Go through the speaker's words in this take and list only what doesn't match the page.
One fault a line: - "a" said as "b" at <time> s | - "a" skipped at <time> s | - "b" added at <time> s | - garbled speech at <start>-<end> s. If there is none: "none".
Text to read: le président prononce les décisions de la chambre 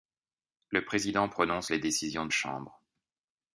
- "la" skipped at 2.3 s